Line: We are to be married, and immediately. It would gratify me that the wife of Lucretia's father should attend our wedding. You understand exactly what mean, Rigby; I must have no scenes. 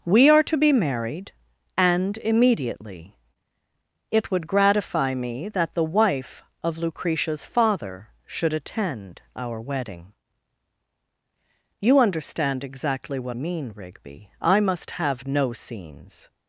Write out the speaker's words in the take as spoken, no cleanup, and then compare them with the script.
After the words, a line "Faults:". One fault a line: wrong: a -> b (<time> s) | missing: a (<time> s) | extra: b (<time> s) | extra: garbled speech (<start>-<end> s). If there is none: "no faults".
We are to be married, and immediately. It would gratify me that the wife of Lucretia's father should attend our wedding. You understand exactly what mean, Rigby; I must have no scenes.
Faults:
no faults